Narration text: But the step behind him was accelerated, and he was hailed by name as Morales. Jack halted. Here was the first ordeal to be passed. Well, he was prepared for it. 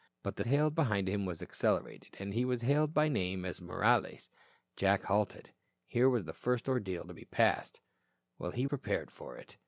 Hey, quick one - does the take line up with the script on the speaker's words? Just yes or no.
no